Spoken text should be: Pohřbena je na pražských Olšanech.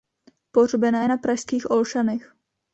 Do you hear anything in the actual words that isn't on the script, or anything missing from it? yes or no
no